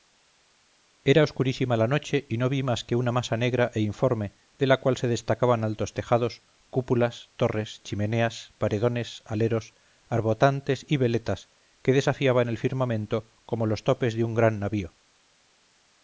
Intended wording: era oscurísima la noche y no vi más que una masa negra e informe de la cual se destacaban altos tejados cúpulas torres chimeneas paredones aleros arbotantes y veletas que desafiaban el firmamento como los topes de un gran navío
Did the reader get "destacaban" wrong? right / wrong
right